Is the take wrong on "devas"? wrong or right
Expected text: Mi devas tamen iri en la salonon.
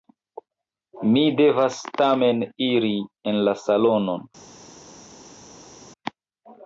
right